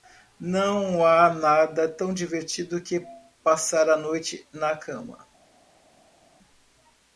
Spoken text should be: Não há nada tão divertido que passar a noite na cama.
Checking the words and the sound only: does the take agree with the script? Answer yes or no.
yes